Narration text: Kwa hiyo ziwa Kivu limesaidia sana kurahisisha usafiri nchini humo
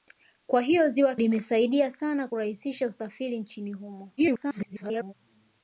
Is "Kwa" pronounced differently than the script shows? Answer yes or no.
no